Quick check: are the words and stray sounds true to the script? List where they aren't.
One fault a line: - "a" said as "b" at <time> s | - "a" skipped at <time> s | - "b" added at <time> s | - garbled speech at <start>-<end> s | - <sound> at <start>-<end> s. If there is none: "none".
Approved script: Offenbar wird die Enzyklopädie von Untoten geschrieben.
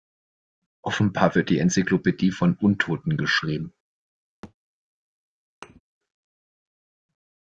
- thud at 4.4-4.5 s
- thud at 5.6-5.8 s